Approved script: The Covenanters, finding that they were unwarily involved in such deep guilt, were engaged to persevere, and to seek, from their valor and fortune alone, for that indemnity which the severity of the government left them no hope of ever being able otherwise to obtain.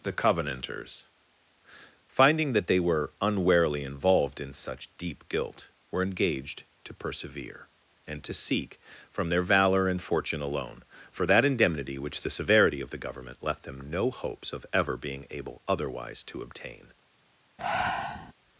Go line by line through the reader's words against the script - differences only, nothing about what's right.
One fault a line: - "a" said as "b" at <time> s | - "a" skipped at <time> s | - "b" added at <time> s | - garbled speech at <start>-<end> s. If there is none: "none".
- "hope" said as "hopes" at 14.1 s